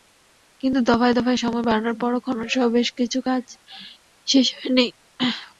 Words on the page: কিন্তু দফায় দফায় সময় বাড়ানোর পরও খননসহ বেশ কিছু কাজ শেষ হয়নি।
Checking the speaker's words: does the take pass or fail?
pass